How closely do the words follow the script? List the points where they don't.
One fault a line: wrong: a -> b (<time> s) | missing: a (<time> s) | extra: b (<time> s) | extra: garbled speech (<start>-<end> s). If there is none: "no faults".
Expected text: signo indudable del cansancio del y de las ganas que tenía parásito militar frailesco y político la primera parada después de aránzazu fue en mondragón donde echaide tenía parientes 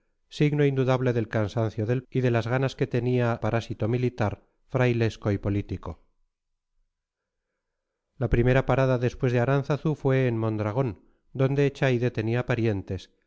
no faults